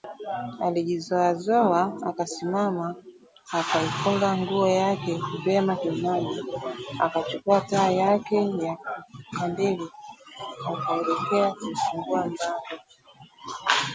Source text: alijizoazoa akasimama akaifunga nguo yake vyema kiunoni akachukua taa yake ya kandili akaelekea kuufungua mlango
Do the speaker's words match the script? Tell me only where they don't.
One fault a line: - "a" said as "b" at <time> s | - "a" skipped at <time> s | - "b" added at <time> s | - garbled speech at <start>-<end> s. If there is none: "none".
none